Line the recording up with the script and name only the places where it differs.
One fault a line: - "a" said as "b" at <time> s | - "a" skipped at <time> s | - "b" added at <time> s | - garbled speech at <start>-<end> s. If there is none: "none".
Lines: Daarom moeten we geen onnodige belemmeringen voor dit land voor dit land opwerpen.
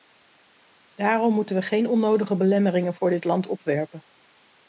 - "voor dit land" skipped at 3.5 s